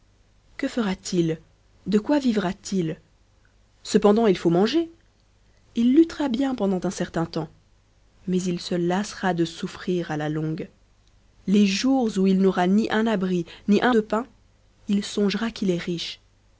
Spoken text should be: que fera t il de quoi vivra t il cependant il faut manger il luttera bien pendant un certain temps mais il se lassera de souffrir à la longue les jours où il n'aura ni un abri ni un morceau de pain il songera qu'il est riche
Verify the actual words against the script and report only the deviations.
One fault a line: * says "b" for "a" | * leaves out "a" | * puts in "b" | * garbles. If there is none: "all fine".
* leaves out "morceau"